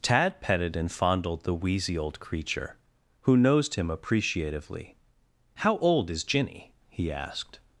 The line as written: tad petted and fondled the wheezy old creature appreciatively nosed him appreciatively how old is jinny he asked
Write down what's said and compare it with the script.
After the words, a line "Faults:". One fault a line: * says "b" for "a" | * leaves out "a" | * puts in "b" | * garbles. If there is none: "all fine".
tad petted and fondled the wheezy old creature who nosed him appreciatively how old is jinny he asked
Faults:
* says "who" for "appreciatively"